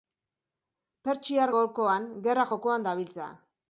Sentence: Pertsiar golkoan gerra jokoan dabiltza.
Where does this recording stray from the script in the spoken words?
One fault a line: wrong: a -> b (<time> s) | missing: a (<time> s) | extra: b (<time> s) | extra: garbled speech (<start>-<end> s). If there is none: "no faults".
no faults